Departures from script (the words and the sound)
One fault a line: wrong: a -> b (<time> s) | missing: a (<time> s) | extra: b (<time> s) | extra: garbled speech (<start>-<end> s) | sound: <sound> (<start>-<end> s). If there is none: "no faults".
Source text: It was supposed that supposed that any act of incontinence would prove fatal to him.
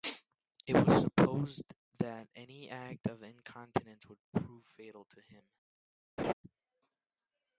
missing: supposed that (2.3 s)
sound: laugh (6.2-6.3 s)